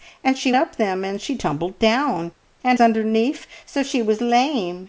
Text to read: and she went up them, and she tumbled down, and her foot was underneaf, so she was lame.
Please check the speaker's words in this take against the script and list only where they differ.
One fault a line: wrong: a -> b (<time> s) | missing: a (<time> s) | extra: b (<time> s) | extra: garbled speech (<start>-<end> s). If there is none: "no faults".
missing: went (0.5 s)
missing: her foot was (2.8 s)